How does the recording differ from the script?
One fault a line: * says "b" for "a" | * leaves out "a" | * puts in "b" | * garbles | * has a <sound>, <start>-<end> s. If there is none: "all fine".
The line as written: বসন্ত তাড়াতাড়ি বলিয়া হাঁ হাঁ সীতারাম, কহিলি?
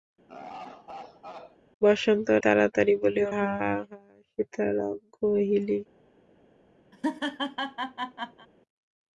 * has a laugh, 0.3-1.6 s
* has a laugh, 6.9-8.5 s